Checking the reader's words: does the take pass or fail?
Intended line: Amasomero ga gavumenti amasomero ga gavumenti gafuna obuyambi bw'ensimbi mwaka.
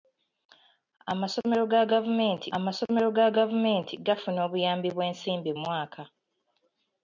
pass